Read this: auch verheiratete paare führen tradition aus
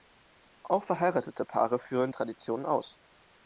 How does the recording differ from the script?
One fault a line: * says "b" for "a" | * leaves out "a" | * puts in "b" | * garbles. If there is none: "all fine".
all fine